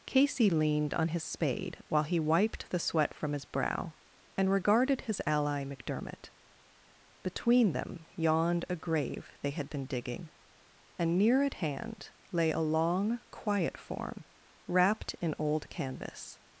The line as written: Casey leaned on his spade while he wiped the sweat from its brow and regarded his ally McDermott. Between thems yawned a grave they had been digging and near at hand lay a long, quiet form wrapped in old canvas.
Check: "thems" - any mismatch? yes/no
yes